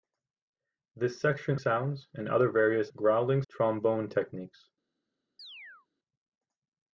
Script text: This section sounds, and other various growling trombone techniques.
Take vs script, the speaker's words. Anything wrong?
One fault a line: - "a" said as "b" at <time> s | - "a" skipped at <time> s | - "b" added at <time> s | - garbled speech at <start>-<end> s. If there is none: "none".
none